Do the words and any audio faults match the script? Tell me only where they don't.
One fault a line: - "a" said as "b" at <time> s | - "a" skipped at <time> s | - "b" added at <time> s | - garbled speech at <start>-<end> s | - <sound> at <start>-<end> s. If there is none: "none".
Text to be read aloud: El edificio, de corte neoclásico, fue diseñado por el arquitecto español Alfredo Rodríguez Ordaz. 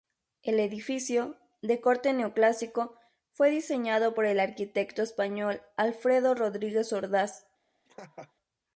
- laugh at 7.8-8.3 s